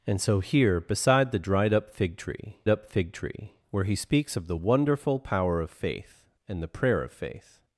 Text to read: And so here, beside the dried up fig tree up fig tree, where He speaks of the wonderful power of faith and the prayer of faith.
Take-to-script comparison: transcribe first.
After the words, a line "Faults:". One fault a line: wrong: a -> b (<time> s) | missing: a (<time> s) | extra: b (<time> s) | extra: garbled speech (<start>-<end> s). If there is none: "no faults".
And so here, beside the dried up fig tree up fig tree, where He speaks of the wonderful power of faith and the prayer of faith.
Faults:
no faults